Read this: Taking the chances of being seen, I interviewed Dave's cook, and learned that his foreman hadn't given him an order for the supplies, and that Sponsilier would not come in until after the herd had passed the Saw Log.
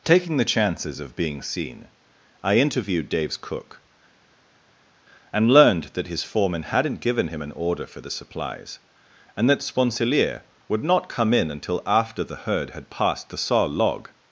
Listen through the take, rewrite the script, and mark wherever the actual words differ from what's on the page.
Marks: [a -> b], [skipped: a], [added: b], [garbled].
Taking the chances of being seen, I interviewed Dave's cook, and learned that his foreman hadn't given him an order for the supplies, and that Sponsilier would not come in until after the herd had passed the Saw Log.